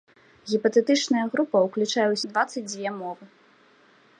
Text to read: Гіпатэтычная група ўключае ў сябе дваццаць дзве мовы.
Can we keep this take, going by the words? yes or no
no